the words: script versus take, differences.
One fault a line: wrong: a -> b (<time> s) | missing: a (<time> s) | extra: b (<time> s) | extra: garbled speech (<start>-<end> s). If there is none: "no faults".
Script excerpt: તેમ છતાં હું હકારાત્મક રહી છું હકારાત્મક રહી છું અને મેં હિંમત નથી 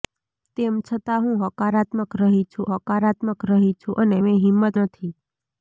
no faults